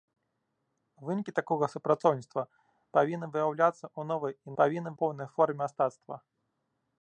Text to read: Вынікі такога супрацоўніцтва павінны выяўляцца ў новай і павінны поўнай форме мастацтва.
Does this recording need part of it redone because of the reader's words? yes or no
no